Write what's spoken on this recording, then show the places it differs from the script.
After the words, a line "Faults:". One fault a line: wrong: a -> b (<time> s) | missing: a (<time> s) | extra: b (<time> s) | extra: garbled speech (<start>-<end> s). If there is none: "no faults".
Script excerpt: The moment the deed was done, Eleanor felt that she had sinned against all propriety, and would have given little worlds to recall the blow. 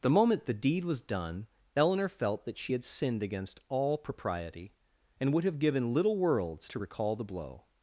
The moment the deed was done, Eleanor felt that she had sinned against all propriety, and would have given little worlds to recall the blow.
Faults:
no faults